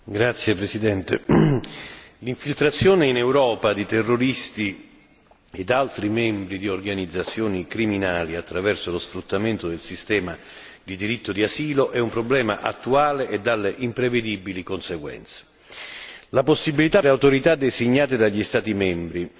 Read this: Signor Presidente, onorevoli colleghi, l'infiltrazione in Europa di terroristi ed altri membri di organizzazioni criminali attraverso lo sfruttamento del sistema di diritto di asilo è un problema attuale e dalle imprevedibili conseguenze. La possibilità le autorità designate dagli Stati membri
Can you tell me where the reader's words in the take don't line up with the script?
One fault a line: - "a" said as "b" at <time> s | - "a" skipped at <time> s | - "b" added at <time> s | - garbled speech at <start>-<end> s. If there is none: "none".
none